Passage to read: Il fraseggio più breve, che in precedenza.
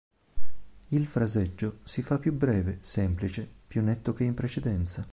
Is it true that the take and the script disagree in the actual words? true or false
true